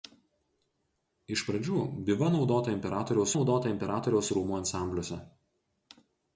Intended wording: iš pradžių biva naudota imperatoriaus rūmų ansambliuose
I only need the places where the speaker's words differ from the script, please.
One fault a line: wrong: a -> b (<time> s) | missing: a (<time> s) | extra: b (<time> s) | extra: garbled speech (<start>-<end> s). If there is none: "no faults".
extra: naudota imperatoriaus (3.3 s)